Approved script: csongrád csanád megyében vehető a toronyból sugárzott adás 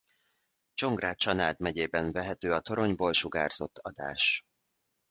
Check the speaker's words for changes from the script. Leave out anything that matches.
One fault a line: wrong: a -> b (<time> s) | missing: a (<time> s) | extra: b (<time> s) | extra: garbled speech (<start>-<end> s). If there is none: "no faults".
no faults